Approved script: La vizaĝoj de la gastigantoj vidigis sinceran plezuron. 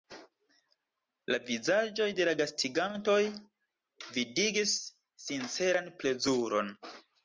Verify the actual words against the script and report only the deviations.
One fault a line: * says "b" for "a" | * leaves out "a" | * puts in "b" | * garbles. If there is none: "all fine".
all fine